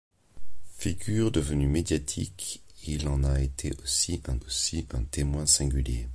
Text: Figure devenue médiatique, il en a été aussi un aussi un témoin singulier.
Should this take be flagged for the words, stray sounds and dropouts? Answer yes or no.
no